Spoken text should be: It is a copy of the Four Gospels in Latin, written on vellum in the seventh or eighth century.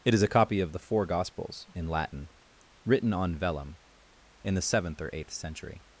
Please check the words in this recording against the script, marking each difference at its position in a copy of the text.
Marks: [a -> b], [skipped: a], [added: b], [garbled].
It is a copy of the Four Gospels in Latin, written on vellum in the seventh or eighth century.